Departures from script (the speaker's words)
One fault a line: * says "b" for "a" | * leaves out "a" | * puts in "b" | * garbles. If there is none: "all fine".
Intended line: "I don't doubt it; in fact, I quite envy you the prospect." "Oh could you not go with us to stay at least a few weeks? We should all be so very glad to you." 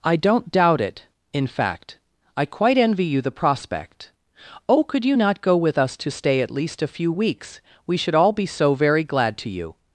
all fine